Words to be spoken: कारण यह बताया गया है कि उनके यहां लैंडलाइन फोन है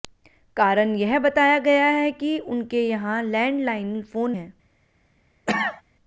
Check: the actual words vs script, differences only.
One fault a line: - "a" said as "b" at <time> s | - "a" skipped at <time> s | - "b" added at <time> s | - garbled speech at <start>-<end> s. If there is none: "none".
none